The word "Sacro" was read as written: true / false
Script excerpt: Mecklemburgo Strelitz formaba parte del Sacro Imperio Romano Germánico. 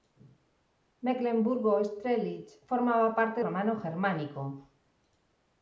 false